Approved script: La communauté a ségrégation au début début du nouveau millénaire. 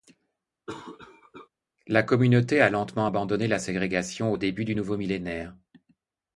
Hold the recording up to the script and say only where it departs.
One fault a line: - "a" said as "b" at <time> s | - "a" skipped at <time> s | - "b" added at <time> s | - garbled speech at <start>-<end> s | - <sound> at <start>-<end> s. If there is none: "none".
- cough at 0.7-1.5 s
- "lentement abandonné la" added at 2.7 s
- "début" skipped at 4.6 s